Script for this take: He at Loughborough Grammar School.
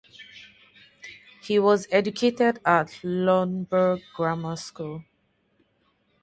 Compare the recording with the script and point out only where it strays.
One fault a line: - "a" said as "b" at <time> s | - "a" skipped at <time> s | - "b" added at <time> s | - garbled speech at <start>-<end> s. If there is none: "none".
- "was educated" added at 1.6 s